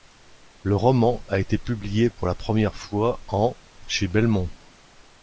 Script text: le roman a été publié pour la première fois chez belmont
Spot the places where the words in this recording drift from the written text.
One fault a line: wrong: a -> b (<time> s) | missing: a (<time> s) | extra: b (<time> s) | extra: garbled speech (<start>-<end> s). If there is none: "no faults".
extra: en (3.3 s)